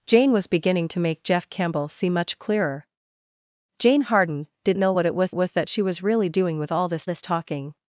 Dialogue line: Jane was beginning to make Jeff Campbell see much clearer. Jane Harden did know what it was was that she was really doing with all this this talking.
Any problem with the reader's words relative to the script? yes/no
no